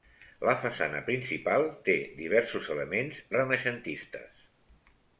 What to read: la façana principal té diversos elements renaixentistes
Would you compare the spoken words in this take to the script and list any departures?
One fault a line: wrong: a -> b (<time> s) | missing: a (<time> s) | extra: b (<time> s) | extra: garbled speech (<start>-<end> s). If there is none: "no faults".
no faults